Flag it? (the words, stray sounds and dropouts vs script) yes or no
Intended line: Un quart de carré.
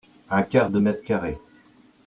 yes